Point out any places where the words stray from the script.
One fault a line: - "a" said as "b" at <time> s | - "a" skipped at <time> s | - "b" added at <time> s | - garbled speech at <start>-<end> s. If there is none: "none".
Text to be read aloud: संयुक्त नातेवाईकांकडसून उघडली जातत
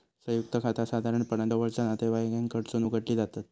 - "खाता साधारणपणान जवळचा" added at 0.6 s